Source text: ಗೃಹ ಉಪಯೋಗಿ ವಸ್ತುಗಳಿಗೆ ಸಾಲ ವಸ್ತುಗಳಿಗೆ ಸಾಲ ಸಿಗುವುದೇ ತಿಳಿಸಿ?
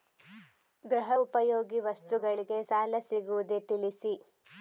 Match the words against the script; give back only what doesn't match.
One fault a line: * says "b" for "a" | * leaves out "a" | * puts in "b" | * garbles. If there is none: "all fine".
* leaves out "ವಸ್ತುಗಳಿಗೆ ಸಾಲ"